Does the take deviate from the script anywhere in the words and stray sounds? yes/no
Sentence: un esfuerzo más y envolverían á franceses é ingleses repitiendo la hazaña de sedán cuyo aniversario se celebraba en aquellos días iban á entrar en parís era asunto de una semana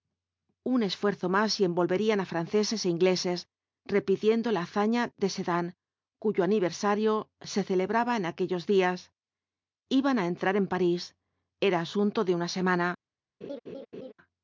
yes